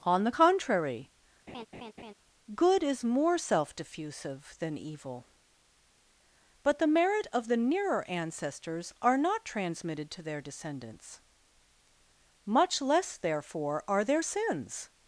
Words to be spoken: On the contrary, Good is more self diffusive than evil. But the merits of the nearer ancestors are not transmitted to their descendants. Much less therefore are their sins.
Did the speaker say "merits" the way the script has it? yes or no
no